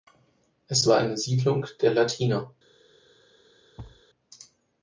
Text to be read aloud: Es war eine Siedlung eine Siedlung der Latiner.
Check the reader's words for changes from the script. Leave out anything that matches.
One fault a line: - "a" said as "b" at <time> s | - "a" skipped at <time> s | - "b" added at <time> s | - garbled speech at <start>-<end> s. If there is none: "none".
- "eine Siedlung" skipped at 1.7 s